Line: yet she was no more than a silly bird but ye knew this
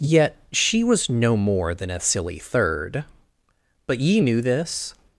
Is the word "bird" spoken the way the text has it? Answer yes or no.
no